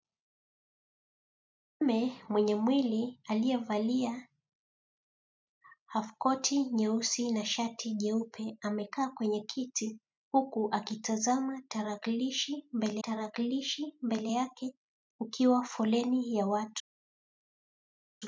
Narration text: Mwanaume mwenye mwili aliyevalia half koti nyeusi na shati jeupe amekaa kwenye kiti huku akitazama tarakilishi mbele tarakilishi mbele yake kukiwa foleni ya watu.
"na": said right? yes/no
yes